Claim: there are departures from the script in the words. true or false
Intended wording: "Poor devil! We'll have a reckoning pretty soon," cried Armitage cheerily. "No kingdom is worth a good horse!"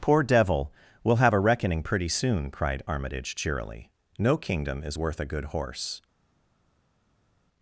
false